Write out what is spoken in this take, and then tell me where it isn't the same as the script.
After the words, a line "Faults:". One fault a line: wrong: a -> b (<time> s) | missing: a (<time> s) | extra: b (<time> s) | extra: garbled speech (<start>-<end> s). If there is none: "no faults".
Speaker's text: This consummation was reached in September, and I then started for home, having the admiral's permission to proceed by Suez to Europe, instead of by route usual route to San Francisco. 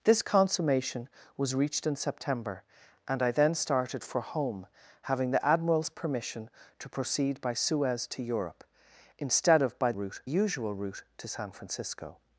This consummation was reached in September, and I then started for home, having the admiral's permission to proceed by Suez to Europe, instead of by route usual route to San Francisco.
Faults:
no faults